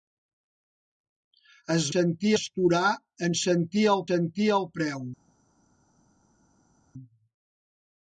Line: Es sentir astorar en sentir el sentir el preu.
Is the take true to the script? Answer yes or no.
yes